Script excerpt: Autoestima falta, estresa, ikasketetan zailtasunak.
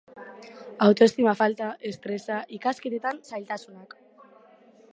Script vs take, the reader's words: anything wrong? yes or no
no